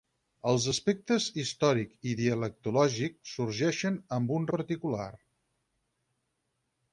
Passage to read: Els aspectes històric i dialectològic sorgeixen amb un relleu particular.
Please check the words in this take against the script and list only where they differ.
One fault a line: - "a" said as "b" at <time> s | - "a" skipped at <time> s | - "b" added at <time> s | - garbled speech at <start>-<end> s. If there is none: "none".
- "relleu" skipped at 4.5 s